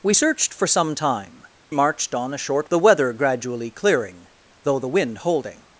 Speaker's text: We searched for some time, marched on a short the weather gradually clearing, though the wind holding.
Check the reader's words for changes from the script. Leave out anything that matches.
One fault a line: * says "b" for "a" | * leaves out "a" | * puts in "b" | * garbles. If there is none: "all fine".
all fine